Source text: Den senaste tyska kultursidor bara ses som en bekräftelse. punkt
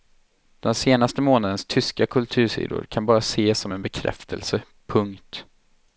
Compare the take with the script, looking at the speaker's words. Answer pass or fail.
fail